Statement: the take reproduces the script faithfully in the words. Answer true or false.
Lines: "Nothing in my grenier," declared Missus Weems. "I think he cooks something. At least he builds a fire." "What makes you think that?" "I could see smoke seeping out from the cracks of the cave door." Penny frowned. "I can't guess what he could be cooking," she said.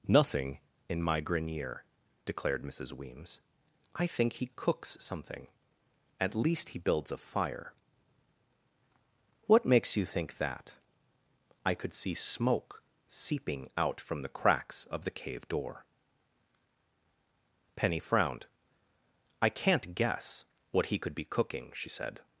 true